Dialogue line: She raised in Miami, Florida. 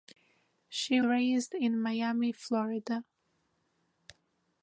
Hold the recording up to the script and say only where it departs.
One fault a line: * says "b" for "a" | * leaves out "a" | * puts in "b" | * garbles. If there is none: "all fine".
all fine